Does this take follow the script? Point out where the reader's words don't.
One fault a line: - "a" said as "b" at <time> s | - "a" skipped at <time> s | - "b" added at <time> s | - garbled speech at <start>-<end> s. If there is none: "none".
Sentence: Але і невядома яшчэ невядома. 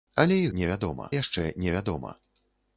none